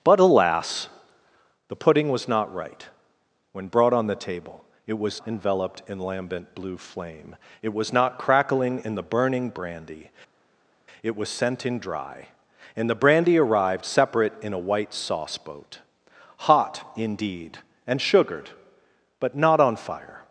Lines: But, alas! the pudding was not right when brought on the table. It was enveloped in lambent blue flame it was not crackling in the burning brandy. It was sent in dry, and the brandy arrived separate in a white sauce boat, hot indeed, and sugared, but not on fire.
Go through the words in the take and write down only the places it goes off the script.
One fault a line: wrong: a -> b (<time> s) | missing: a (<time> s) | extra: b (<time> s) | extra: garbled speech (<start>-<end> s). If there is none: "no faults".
no faults